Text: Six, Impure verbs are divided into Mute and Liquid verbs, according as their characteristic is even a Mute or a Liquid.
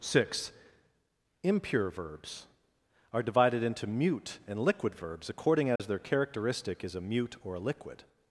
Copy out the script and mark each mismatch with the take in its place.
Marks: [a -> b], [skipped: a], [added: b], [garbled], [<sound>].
Six, Impure verbs are divided into Mute and Liquid verbs, according as [dropout] their characteristic is [skipped: even] a Mute or a Liquid.